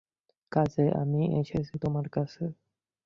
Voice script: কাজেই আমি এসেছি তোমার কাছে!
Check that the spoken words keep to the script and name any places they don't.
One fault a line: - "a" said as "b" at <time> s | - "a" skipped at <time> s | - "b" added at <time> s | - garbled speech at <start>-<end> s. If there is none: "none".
none